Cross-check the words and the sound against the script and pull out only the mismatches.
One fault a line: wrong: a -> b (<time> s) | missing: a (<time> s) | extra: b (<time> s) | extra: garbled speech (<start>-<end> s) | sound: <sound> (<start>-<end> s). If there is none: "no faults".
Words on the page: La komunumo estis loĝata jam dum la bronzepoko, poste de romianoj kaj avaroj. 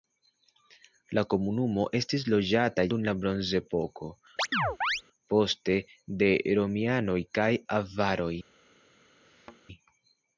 missing: jam (2.9 s)
sound: chirp (4.4-5.0 s)
sound: thud (9.2-9.6 s)